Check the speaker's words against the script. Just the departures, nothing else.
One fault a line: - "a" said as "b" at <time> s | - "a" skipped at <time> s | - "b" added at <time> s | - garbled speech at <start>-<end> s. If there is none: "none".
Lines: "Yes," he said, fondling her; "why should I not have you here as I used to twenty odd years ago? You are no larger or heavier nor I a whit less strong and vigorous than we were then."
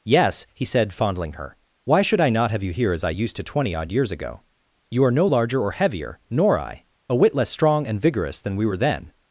none